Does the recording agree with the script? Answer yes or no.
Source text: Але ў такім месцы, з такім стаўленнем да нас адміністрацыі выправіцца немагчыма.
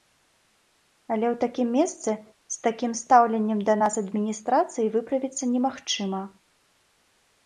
yes